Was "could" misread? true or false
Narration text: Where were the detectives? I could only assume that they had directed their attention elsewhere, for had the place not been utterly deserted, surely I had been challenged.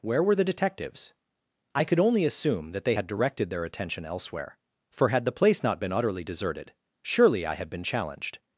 false